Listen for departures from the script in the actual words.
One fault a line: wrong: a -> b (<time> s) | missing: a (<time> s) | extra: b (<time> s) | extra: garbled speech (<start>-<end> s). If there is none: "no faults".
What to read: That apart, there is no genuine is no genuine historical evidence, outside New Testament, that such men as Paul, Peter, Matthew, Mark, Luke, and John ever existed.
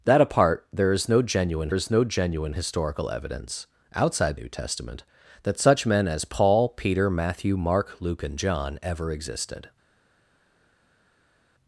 no faults